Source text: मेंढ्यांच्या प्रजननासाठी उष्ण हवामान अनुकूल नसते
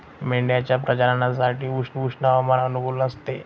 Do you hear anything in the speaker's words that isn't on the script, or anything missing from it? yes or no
yes